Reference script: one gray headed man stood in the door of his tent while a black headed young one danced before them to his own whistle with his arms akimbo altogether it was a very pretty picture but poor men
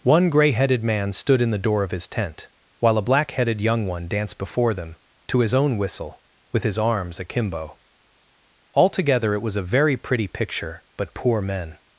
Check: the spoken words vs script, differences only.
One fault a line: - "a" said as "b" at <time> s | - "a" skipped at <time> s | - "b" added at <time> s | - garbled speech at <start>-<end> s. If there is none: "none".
none